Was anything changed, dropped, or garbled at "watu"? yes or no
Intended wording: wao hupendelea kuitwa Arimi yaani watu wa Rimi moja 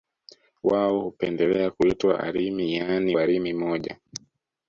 yes